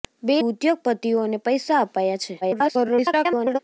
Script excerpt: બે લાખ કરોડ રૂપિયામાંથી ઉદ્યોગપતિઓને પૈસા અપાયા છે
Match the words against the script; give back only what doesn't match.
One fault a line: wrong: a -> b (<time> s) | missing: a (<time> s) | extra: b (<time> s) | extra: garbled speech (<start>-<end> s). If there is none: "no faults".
missing: લાખ કરોડ રૂપિયામાંથી (0.3 s)
extra: garbled speech (2.4-3.6 s)